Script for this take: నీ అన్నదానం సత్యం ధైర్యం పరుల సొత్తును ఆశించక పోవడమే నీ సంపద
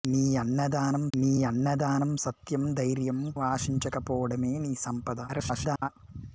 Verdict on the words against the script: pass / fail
fail